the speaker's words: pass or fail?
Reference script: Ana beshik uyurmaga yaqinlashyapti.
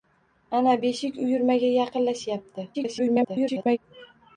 fail